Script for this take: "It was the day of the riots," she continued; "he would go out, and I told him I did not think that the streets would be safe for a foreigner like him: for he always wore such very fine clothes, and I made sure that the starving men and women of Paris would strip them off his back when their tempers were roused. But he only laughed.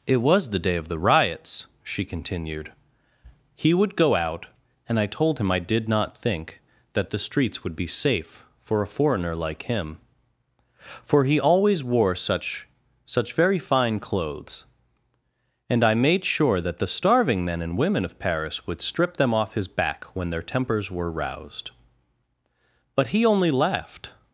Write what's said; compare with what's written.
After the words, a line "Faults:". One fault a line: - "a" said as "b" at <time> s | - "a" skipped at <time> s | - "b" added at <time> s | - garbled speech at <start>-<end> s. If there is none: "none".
"It was the day of the riots," she continued; "he would go out, and I told him I did not think that the streets would be safe for a foreigner like him: for he always wore such such very fine clothes, and I made sure that the starving men and women of Paris would strip them off his back when their tempers were roused. But he only laughed.
Faults:
- "such" added at 13.1 s